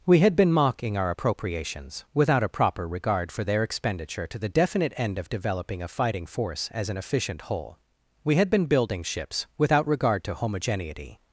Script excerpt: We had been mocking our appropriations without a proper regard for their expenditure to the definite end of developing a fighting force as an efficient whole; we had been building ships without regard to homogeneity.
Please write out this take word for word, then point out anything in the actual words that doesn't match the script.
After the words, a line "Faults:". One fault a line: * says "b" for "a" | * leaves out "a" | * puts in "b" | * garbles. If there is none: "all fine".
We had been mocking our appropriations without a proper regard for their expenditure to the definite end of developing a fighting force as an efficient whole; we had been building ships without regard to homogeneity.
Faults:
all fine